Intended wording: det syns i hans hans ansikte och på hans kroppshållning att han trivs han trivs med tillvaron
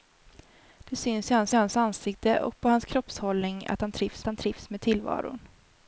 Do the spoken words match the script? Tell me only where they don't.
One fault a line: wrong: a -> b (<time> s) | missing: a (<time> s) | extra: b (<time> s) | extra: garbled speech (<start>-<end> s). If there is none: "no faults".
no faults